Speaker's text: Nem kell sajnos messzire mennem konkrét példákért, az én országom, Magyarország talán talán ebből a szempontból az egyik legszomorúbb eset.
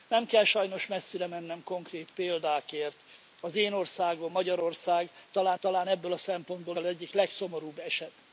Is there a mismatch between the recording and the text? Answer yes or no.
no